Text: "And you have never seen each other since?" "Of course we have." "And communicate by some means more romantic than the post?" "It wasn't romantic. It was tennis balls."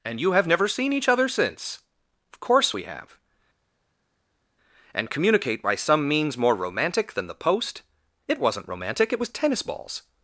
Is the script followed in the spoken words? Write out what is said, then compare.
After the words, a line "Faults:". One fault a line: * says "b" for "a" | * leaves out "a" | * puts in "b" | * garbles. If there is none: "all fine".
"And you have never seen each other since?" "Of course we have." "And communicate by some means more romantic than the post?" "It wasn't romantic. It was tennis balls."
Faults:
all fine